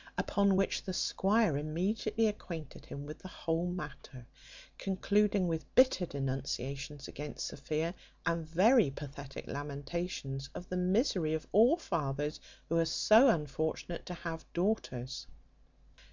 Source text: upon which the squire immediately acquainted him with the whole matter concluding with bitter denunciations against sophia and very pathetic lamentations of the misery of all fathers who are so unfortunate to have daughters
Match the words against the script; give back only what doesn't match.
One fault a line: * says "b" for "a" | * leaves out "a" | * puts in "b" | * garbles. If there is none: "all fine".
all fine